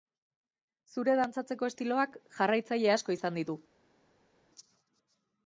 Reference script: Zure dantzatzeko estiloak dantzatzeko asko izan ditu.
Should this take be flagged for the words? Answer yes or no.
yes